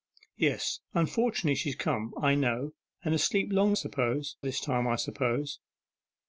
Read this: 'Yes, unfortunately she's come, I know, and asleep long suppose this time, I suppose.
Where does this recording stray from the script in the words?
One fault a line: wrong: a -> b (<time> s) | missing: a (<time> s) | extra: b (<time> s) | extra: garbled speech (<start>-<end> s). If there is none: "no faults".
no faults